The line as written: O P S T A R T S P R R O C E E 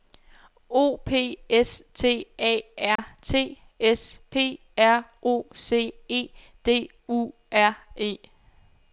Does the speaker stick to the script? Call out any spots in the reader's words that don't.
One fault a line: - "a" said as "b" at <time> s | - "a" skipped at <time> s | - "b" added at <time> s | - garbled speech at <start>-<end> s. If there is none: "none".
- "R" skipped at 5.0 s
- "D U R" added at 6.6 s